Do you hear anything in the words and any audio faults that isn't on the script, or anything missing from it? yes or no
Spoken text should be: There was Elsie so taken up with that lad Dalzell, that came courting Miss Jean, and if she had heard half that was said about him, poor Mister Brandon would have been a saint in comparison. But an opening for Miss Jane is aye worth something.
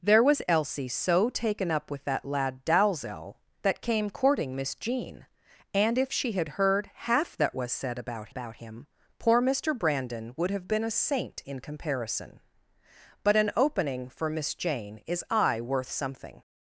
yes